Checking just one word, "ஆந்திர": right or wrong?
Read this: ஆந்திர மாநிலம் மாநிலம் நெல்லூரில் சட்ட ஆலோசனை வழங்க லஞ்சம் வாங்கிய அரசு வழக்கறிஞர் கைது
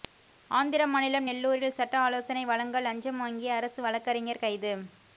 right